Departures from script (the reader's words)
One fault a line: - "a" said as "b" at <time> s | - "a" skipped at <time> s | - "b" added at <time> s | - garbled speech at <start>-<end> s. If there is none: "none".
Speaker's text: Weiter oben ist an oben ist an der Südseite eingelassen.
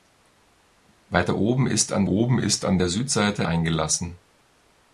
none